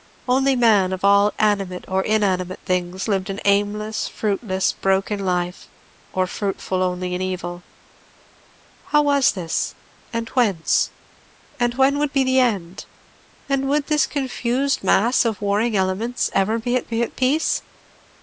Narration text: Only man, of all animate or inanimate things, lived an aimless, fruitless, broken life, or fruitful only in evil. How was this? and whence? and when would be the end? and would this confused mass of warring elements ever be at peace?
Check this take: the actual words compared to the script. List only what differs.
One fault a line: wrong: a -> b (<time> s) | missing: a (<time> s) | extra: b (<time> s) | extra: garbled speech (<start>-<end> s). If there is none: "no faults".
extra: be at (16.9 s)